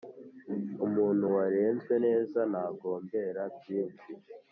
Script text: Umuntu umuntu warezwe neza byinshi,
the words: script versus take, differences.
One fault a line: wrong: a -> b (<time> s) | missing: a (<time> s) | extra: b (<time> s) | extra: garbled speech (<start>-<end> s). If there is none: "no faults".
missing: umuntu (1.2 s)
extra: ntagombera (2.5 s)